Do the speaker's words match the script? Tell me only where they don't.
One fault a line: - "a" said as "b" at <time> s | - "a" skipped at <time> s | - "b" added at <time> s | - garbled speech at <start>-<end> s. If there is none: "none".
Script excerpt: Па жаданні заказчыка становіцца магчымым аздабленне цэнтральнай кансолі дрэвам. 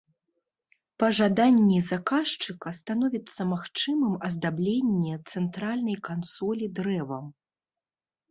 none